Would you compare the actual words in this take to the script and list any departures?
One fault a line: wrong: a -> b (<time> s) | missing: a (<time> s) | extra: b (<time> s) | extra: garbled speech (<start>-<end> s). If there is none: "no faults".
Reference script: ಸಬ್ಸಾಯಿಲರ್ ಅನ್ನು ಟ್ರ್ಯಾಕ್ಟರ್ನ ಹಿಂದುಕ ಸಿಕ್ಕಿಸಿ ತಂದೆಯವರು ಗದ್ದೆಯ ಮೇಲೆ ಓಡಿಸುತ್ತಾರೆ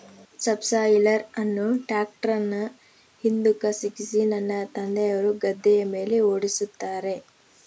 extra: ನನ್ನ (4.3 s)